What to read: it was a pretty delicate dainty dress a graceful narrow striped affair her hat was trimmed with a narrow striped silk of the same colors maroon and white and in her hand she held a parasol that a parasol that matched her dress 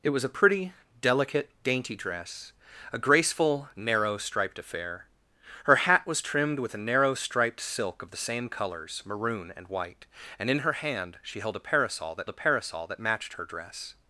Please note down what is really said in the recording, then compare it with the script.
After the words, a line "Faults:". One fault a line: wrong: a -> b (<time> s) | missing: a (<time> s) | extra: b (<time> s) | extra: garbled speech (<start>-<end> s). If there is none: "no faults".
it was a pretty delicate dainty dress a graceful narrow striped affair her hat was trimmed with a narrow striped silk of the same colors maroon and white and in her hand she held a parasol that a parasol that matched her dress
Faults:
no faults